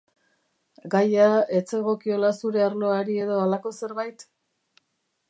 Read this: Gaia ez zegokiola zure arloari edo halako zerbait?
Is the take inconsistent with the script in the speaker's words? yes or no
no